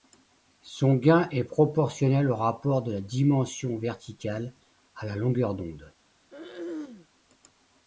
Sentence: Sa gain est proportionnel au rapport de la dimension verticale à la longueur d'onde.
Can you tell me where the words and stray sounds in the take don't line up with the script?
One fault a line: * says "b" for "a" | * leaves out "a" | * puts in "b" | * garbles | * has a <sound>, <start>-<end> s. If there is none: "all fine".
* says "Son" for "Sa"
* has a throat clearing, 6.3-7.1 s